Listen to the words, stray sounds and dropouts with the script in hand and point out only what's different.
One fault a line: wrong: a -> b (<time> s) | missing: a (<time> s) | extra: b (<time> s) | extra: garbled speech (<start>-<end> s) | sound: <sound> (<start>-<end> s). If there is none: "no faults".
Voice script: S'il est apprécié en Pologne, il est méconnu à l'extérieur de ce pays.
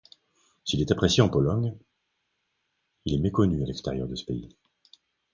no faults